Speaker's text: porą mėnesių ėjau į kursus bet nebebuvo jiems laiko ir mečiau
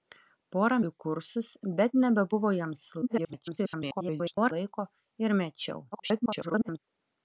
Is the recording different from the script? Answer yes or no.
yes